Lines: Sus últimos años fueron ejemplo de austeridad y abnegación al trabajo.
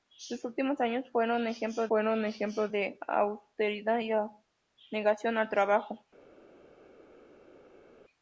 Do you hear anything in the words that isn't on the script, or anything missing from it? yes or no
yes